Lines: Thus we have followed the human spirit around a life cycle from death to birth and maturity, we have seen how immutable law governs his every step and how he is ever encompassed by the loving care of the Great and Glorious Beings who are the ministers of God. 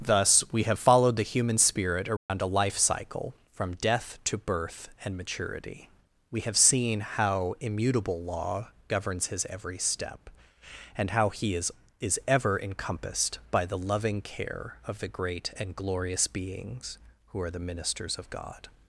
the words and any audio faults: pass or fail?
fail